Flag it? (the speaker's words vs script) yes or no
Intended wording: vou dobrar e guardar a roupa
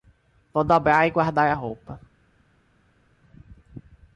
no